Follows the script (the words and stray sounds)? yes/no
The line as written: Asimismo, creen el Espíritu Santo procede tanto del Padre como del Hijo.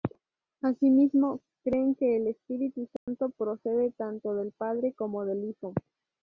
no